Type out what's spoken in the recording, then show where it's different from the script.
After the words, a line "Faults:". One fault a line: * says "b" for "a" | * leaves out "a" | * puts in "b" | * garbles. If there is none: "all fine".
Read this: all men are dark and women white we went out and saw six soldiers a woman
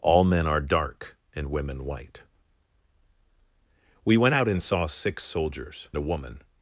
all men are dark and women white we went out and saw six soldiers a woman
Faults:
all fine